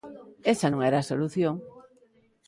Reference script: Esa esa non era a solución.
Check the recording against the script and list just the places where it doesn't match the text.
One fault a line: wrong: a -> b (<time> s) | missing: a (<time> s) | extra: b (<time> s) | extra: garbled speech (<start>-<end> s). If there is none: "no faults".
missing: esa (0.7 s)